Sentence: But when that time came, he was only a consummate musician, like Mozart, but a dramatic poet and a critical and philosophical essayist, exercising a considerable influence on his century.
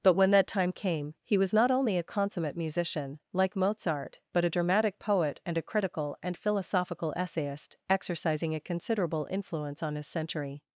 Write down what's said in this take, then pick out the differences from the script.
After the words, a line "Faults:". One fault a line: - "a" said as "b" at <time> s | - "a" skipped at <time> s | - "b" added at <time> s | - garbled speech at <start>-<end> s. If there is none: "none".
But when that time came, he was not only a consummate musician, like Mozart, but a dramatic poet and a critical and philosophical essayist, exercising a considerable influence on his century.
Faults:
- "not" added at 1.5 s